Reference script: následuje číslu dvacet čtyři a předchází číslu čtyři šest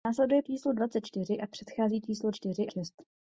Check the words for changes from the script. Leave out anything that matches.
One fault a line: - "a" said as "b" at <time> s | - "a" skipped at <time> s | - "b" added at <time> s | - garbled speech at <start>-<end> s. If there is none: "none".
none